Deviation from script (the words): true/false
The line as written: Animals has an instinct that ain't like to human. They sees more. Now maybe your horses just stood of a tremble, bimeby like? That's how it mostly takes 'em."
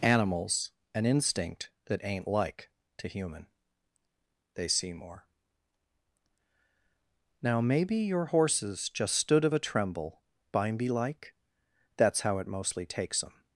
true